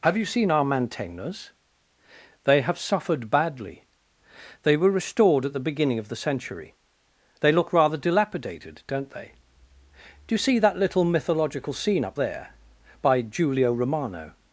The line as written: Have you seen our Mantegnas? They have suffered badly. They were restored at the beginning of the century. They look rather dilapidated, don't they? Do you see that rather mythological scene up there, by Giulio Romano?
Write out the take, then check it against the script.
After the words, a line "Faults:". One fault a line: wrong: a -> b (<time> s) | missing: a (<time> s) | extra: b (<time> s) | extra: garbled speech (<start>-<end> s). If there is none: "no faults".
Have you seen our Mantegnas? They have suffered badly. They were restored at the beginning of the century. They look rather dilapidated, don't they? Do you see that little mythological scene up there, by Giulio Romano?
Faults:
wrong: rather -> little (10.8 s)